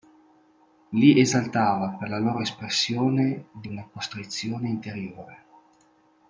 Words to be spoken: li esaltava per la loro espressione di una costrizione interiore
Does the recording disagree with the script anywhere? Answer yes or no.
no